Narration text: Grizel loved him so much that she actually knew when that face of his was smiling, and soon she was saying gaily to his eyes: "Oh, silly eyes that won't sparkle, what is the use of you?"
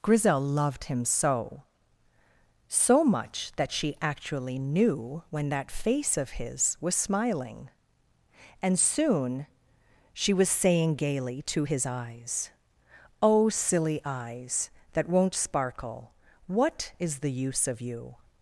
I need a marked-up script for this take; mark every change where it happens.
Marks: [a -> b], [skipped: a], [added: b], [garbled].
Grizel loved him so [added: so] much that she actually knew when that face of his was smiling, and soon she was saying gaily to his eyes: "Oh, silly eyes that won't sparkle, what is the use of you?"